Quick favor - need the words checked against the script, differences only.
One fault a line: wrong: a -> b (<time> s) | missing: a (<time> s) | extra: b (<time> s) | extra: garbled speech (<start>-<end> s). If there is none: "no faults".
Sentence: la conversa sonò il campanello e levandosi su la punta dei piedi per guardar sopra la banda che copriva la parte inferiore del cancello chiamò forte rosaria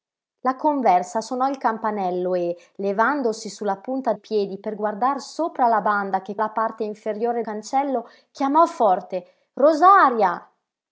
missing: dei (4.1 s)
missing: copriva (6.4 s)
missing: del (7.4 s)